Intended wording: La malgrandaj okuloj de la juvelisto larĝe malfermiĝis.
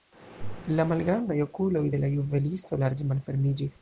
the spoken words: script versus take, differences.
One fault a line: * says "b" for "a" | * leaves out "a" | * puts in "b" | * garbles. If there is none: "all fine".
all fine